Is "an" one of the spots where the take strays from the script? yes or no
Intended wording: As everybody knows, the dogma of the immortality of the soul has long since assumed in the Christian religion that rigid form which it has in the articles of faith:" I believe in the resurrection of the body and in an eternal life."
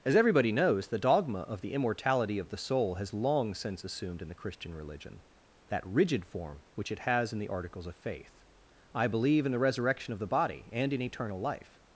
yes